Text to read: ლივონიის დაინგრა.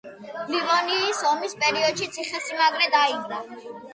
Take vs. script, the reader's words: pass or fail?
fail